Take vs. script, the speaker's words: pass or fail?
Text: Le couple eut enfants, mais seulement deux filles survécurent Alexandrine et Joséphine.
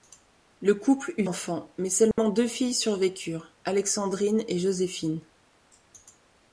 pass